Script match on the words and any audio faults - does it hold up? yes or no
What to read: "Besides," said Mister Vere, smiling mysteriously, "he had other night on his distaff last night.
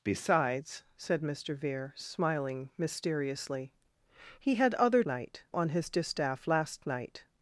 yes